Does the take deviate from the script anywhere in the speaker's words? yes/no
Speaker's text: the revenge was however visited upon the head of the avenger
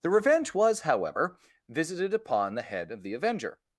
no